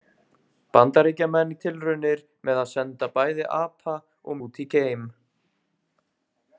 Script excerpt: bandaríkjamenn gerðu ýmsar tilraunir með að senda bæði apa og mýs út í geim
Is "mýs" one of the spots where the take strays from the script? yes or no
yes